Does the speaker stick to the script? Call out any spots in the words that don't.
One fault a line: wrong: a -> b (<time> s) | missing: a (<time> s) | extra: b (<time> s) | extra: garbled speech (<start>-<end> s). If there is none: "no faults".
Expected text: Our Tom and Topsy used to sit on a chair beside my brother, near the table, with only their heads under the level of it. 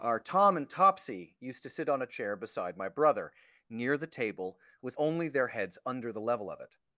no faults